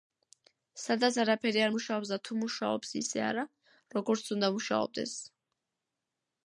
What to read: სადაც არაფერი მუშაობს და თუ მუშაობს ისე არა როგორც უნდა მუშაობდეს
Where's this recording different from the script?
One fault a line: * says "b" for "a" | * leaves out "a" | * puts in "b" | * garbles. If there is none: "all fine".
* puts in "არ"